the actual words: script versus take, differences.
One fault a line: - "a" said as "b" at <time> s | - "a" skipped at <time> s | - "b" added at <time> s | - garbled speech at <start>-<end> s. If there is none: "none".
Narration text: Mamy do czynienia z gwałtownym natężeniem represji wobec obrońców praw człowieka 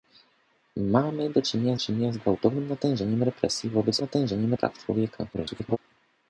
- "czynienia" added at 1.8 s
- "obrońców" said as "natężeniem" at 4.0 s
- garbled speech at 5.3-5.8 s